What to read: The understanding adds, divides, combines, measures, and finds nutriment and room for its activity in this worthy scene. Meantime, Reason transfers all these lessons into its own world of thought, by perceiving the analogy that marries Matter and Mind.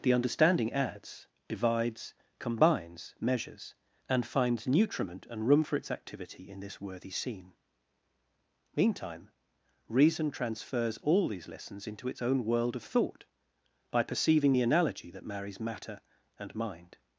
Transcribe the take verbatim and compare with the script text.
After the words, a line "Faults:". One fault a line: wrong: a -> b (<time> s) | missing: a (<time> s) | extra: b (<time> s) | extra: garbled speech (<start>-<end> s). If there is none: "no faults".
The understanding adds, divides, combines, measures, and finds nutriment and room for its activity in this worthy scene. Meantime, Reason transfers all these lessons into its own world of thought, by perceiving the analogy that marries Matter and Mind.
Faults:
no faults